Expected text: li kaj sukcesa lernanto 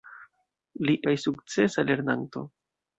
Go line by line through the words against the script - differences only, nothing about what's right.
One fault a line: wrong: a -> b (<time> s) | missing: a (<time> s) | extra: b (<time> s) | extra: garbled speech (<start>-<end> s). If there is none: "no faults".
no faults